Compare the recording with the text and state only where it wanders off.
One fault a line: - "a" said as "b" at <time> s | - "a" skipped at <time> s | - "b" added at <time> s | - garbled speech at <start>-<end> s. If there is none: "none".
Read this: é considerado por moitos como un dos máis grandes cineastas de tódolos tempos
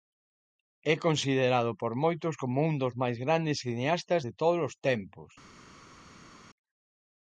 none